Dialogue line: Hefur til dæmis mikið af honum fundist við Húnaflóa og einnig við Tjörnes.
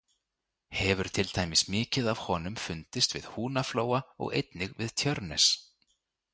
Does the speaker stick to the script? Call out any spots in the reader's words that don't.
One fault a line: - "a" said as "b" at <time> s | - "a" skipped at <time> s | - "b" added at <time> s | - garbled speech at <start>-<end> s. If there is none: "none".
none